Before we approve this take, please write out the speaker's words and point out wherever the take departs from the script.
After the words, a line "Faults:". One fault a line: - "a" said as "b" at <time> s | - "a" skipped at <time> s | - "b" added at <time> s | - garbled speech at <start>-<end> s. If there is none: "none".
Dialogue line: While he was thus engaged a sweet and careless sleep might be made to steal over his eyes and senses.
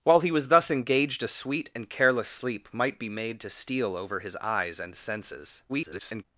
While he was thus engaged a sweet and careless sleep might be made to steal over his eyes and senses. [garbled]
Faults:
- garbled speech at 5.7-6.3 s